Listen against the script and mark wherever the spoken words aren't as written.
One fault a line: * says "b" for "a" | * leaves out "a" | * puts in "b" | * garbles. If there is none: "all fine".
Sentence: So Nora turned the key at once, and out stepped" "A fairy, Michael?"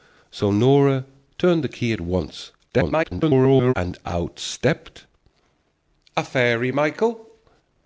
* garbles